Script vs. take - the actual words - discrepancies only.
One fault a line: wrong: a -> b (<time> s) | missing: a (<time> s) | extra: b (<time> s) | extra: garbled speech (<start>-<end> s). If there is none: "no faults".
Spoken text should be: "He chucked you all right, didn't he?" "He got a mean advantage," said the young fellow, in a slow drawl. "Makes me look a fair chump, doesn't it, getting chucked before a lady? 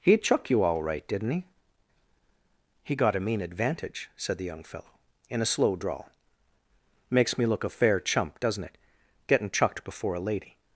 wrong: chucked -> chuck (0.2 s)